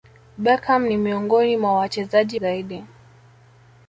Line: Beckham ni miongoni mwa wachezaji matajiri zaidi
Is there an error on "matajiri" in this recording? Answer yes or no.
yes